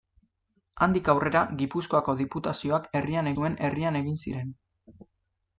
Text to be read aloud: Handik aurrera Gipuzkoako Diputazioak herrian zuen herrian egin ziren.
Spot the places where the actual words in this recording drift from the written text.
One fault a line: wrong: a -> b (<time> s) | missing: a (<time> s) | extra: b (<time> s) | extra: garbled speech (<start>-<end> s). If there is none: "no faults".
no faults